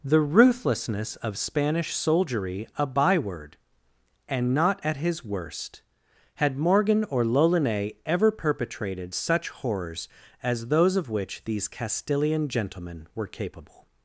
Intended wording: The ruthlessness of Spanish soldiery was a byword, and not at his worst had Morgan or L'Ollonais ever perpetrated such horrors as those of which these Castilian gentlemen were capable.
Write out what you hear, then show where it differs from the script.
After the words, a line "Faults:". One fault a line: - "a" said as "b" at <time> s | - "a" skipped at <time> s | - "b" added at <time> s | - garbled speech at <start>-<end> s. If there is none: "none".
The ruthlessness of Spanish soldiery a byword, and not at his worst had Morgan or L'Ollonais ever perpetrated such horrors as those of which these Castilian gentlemen were capable.
Faults:
- "was" skipped at 2.7 s